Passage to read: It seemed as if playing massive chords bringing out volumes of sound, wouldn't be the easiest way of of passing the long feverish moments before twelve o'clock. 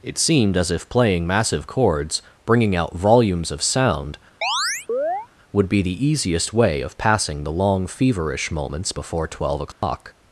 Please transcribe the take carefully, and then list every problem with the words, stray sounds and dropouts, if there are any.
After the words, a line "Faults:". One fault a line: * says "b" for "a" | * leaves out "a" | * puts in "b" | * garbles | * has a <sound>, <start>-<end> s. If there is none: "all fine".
It seemed as if playing massive chords bringing out volumes of sound, would be the easiest way of passing the long feverish moments before twelve o'clock.
Faults:
* has a chirp, 4.4-5.3 s
* says "would" for "wouldn't"
* leaves out "of"
* has a dropout, 9.7-9.8 s